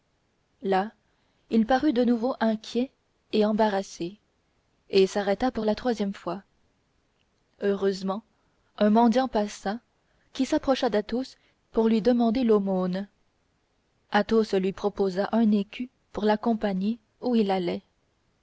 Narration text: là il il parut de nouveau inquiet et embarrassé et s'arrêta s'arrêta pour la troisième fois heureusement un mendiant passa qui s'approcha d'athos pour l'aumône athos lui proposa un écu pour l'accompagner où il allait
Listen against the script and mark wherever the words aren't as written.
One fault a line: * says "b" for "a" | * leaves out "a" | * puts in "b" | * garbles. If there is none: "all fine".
* leaves out "il"
* leaves out "s'arrêta"
* puts in "lui demander"